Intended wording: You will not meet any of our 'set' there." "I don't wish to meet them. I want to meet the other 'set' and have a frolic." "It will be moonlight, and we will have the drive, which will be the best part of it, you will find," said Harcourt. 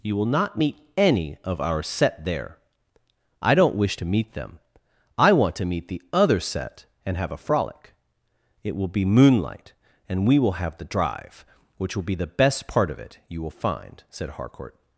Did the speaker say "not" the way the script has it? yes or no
yes